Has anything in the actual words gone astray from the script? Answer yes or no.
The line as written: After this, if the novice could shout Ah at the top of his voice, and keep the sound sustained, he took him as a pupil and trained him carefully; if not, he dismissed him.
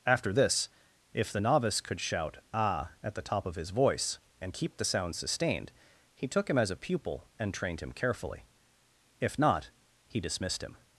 no